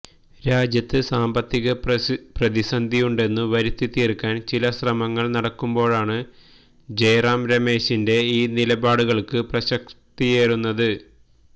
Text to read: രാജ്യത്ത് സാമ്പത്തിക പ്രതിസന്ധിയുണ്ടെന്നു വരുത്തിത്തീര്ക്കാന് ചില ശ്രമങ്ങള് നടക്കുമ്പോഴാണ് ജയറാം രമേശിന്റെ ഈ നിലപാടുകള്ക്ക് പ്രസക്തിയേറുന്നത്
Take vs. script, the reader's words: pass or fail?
pass